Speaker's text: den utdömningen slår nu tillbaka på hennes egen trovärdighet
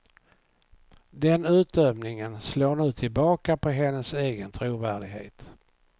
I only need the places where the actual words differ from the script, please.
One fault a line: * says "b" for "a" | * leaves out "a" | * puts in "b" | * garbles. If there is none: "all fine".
all fine